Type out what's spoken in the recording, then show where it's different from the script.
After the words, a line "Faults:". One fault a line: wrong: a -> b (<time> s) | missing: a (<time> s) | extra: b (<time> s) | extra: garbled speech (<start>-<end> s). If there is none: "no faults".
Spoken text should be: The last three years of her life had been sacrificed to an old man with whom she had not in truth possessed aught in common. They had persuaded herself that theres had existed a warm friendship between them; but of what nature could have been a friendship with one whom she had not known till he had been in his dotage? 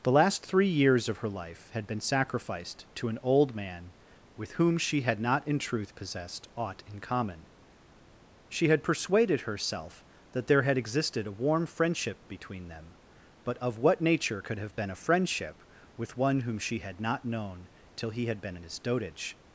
The last three years of her life had been sacrificed to an old man with whom she had not in truth possessed aught in common. She had persuaded herself that there had existed a warm friendship between them; but of what nature could have been a friendship with one whom she had not known till he had been in his dotage?
Faults:
wrong: They -> She (8.5 s)
wrong: theres -> there (10.5 s)